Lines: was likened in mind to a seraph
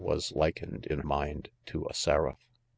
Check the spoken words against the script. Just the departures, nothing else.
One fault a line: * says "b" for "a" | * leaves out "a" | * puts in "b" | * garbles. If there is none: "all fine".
all fine